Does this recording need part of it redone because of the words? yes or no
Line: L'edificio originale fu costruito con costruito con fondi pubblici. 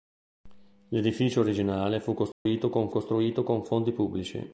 no